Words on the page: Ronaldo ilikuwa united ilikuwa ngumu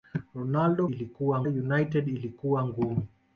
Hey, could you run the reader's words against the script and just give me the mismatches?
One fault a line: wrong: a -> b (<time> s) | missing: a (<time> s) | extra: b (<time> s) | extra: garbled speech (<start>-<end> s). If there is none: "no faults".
no faults